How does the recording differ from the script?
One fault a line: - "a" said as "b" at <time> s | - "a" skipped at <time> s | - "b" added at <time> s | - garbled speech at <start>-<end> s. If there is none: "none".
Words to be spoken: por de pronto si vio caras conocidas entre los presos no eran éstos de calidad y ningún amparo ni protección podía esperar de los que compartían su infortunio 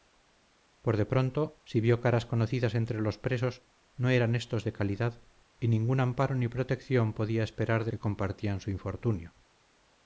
- "los" skipped at 7.9 s